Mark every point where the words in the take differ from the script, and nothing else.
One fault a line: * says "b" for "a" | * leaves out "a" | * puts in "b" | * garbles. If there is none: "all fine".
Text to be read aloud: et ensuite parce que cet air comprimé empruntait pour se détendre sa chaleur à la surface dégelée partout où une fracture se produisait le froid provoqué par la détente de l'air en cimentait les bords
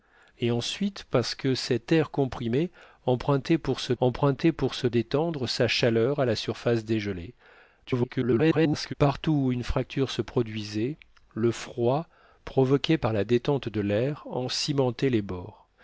* puts in "empruntait pour se"
* garbles